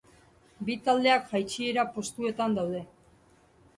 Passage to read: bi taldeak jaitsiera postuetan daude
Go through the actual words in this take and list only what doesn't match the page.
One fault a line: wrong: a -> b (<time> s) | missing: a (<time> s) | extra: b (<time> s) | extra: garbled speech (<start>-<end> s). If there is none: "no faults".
no faults